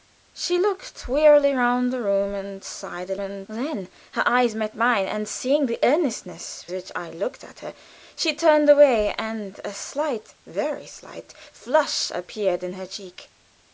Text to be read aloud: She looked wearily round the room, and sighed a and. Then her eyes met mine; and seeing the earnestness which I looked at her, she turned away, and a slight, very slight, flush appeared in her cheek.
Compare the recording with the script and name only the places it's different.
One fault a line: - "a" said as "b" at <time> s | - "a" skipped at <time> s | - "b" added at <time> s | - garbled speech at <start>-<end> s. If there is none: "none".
none